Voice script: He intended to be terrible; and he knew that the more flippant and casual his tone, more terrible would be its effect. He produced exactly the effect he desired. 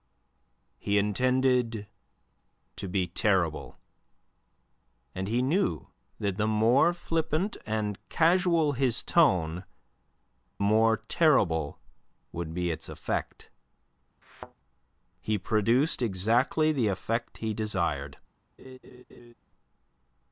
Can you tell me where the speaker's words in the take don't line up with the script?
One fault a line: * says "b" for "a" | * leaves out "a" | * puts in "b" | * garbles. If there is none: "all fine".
all fine